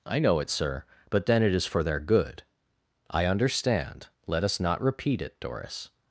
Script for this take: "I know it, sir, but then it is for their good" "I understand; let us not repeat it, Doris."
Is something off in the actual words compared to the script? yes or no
no